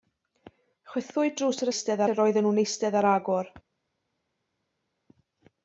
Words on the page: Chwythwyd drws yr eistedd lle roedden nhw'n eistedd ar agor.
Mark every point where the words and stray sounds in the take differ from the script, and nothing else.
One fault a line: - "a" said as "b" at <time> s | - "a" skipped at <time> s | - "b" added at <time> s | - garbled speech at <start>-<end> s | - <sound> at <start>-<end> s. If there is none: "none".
none